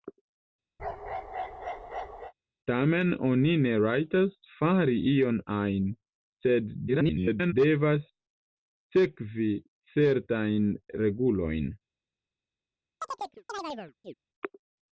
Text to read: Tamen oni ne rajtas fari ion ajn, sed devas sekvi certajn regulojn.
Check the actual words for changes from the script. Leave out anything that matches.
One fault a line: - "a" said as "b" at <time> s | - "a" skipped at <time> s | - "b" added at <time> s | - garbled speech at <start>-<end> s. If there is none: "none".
- garbled speech at 6.9-7.5 s